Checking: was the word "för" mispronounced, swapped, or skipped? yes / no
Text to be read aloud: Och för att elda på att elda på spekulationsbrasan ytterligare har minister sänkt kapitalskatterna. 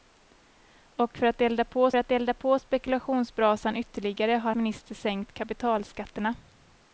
no